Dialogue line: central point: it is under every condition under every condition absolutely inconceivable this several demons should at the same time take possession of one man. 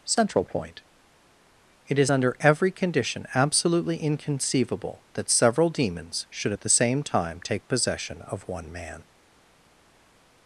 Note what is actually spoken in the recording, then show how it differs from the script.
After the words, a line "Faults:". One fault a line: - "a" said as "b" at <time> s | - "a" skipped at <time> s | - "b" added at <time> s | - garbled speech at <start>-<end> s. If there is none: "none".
central point: it is under every condition absolutely inconceivable that several demons should at the same time take possession of one man.
Faults:
- "under every condition" skipped at 3.2 s
- "this" said as "that" at 5.1 s